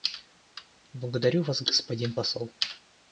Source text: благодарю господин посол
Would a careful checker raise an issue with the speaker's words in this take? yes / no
yes